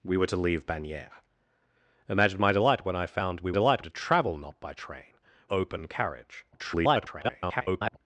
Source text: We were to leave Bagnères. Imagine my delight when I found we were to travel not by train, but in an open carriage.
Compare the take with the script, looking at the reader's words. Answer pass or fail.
fail